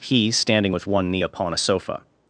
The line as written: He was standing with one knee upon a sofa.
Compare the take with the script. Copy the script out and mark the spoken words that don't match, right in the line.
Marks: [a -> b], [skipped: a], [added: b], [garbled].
He [skipped: was] standing with one knee upon a sofa.